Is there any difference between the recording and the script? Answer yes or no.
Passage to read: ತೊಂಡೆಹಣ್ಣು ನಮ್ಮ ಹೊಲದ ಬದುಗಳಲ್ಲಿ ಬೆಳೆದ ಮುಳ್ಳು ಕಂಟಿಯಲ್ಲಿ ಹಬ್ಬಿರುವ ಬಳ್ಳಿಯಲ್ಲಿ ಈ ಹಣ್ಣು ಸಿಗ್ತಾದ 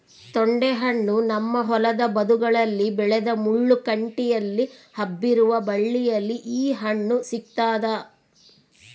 no